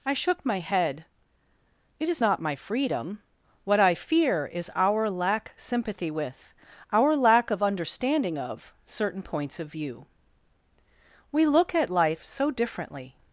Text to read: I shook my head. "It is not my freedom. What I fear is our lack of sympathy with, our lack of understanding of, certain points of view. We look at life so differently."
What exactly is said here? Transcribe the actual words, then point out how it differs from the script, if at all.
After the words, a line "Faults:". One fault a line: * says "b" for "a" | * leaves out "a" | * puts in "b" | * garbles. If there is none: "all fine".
I shook my head. "It is not my freedom. What I fear is our lack sympathy with, our lack of understanding of, certain points of view. We look at life so differently."
Faults:
* leaves out "of"